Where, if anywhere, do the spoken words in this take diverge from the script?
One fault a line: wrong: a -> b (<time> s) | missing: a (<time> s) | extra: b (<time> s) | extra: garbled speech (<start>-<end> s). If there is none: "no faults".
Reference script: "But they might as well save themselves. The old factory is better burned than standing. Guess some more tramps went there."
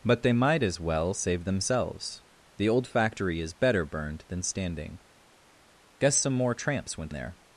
no faults